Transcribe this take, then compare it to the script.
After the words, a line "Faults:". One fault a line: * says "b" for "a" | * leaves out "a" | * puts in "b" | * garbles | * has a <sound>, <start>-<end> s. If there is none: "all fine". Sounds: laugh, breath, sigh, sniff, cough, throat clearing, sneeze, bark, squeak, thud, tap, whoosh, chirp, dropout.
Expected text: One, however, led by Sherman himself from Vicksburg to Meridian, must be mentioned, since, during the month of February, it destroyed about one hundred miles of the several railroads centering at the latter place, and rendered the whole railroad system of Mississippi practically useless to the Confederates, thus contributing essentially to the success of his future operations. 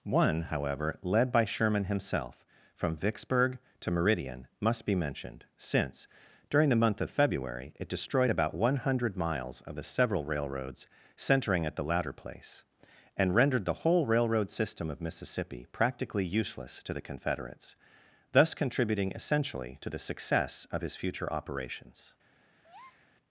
One, however, led by Sherman himself from Vicksburg to Meridian, must be mentioned, since, during the month of February, it destroyed about one hundred miles of the several railroads centering at the latter place, and rendered the whole railroad system of Mississippi practically useless to the Confederates, thus contributing essentially to the success of his future operations.
Faults:
* has a breath, 22.6-23.1 s